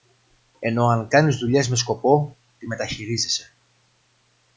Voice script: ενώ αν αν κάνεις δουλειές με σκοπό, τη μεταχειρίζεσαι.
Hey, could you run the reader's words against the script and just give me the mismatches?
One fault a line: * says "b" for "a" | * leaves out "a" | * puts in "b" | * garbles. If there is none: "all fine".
* leaves out "αν"